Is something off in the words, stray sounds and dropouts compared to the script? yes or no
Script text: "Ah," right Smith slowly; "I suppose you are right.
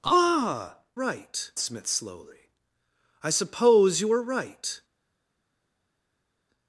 no